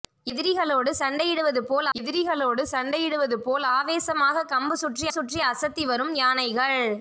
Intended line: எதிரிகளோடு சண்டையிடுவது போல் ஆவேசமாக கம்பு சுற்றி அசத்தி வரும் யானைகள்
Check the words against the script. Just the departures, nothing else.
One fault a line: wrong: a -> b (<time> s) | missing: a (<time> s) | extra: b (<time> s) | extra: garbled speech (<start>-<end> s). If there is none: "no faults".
extra: எதிரிகளோடு சண்டையிடுவது போல் (2.0 s)
extra: சுற்றி (5.1 s)